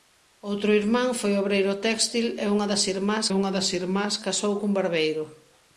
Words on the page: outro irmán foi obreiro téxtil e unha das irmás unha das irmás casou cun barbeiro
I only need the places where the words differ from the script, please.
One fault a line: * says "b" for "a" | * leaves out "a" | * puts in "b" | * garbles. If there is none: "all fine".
all fine